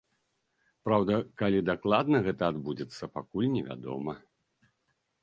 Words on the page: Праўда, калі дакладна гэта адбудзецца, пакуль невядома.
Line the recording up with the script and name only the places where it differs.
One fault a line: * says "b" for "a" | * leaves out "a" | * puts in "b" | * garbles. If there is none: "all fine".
all fine